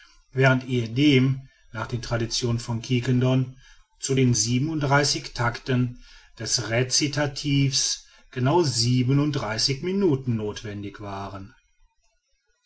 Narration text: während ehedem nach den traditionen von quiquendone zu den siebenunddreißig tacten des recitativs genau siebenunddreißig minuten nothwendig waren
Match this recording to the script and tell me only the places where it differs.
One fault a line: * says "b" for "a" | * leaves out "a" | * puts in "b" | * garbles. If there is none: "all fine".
all fine